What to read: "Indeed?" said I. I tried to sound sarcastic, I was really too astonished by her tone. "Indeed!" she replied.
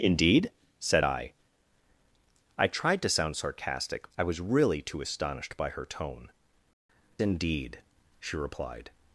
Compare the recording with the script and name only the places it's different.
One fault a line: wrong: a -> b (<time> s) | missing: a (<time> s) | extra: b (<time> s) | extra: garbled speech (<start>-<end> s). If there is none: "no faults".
no faults